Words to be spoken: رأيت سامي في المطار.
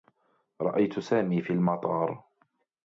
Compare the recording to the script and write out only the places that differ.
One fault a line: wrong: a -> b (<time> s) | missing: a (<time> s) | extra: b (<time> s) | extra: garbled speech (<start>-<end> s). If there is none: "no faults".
no faults